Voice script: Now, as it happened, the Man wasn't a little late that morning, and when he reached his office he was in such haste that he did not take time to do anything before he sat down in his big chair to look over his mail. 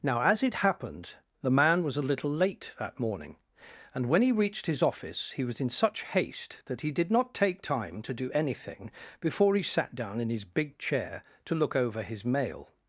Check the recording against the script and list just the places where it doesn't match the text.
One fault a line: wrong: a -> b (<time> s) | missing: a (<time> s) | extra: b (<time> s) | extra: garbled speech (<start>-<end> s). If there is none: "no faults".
wrong: wasn't -> was (1.8 s)